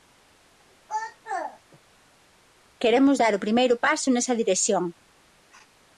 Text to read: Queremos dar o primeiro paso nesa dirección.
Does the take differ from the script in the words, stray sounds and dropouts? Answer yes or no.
no